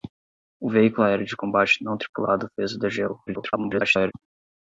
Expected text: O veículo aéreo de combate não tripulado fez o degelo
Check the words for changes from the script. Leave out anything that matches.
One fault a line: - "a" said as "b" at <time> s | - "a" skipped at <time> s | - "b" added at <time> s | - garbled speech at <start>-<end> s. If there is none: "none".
- garbled speech at 3.3-4.1 s